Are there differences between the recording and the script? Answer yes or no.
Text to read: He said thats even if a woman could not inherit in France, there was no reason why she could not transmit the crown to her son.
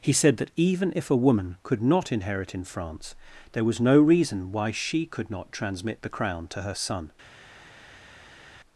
yes